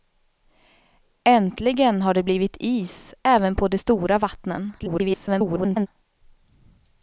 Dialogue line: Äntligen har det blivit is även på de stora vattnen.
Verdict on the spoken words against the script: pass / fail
fail